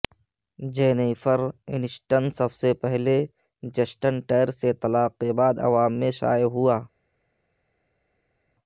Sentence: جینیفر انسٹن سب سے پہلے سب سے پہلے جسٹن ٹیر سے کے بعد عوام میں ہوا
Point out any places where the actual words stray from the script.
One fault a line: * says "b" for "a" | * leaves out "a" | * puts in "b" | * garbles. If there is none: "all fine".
* leaves out "سب سے پہلے"
* puts in "طلاق"
* puts in "شائع"